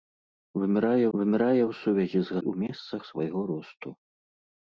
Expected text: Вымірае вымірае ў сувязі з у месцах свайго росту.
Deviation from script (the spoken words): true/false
false